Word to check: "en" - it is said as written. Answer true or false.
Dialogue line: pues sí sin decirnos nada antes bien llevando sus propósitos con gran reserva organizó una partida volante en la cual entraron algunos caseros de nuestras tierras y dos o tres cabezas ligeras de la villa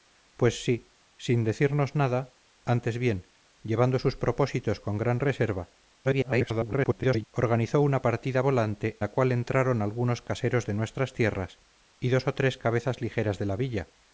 false